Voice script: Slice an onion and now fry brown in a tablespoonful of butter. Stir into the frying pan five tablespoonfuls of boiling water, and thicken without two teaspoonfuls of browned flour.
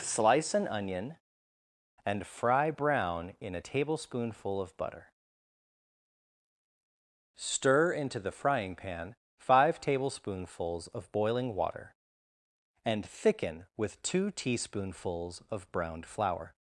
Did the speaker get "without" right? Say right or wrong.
wrong